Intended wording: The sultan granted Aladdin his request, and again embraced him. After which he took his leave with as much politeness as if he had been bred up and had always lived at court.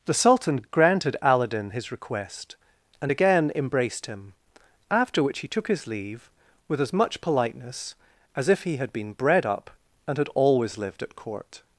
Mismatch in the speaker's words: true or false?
false